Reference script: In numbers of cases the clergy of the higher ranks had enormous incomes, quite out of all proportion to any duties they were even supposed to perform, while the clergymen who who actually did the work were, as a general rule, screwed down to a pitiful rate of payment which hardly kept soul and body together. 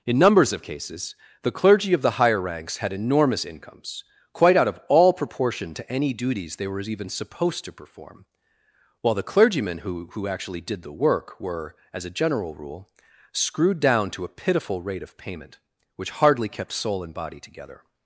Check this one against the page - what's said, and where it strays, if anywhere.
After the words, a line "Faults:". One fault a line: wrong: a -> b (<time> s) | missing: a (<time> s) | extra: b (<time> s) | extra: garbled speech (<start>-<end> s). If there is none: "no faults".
In numbers of cases the clergy of the higher ranks had enormous incomes, quite out of all proportion to any duties they were even supposed to perform, while the clergymen who who actually did the work were, as a general rule, screwed down to a pitiful rate of payment which hardly kept soul and body together.
Faults:
no faults